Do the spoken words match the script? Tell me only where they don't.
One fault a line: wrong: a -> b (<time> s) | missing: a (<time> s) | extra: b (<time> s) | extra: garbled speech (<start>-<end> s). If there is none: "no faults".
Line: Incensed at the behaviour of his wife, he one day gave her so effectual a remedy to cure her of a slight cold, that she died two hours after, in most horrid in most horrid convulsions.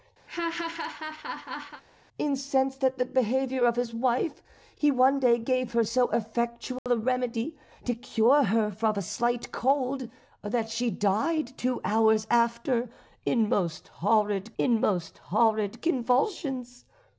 no faults